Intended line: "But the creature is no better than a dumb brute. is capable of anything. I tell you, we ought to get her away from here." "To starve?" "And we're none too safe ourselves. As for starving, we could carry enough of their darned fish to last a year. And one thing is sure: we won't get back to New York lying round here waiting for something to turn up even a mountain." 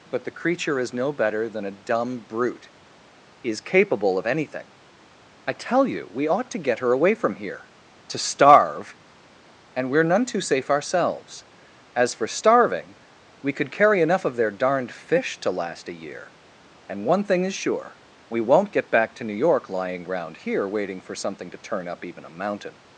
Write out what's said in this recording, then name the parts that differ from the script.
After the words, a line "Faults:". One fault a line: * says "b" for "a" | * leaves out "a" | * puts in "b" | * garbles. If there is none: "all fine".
"But the creature is no better than a dumb brute. is capable of anything. I tell you, we ought to get her away from here." "To starve?" "And we're none too safe ourselves. As for starving, we could carry enough of their darned fish to last a year. And one thing is sure: we won't get back to New York lying round here waiting for something to turn up even a mountain."
Faults:
all fine